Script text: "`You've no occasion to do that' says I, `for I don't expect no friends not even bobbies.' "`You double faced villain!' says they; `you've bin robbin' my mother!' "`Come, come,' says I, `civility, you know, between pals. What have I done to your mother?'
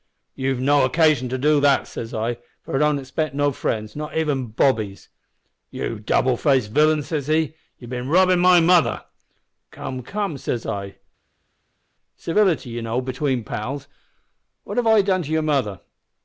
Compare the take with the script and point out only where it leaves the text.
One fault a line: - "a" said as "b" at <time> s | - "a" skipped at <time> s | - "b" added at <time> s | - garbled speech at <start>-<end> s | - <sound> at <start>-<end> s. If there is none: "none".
- "they" said as "he" at 7.3 s